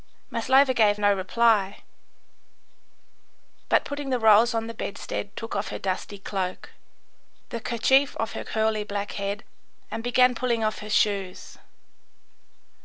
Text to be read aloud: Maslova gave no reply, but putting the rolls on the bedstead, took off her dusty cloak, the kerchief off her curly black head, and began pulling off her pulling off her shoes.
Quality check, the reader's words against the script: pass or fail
fail